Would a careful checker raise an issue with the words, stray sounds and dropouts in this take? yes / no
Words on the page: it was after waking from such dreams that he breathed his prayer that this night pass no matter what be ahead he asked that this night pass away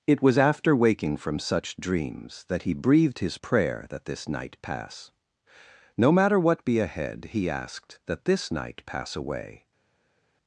no